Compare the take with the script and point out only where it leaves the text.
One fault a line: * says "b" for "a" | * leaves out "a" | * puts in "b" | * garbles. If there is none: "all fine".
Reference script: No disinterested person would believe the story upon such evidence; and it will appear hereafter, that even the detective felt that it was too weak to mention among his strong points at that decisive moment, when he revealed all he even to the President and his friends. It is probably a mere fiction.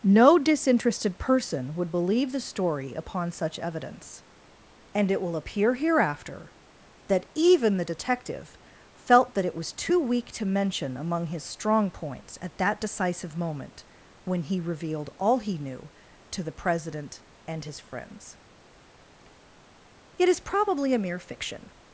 * says "knew" for "even"